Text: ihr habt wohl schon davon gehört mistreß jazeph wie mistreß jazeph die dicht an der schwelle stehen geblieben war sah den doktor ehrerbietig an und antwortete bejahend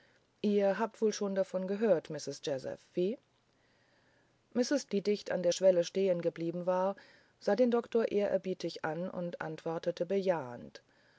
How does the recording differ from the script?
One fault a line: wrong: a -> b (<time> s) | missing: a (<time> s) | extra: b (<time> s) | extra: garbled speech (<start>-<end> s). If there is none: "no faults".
missing: jazeph (4.9 s)